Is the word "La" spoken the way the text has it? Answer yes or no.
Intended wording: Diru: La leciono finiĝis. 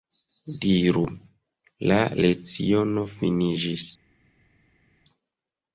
yes